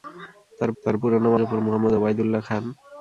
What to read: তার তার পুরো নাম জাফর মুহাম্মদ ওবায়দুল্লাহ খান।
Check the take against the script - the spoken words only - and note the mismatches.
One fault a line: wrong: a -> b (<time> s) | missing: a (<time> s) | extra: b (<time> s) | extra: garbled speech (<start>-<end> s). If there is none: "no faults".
no faults